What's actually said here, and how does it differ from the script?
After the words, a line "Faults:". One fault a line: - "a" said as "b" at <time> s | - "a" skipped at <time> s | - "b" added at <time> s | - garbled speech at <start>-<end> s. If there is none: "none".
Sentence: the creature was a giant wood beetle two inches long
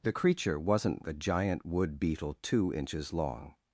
the creature wasn't a giant wood beetle two inches long
Faults:
- "was" said as "wasn't" at 0.6 s